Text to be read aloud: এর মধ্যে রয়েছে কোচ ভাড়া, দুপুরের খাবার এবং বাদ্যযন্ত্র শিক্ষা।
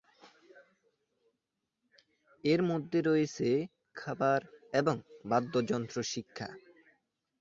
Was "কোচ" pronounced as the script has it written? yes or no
no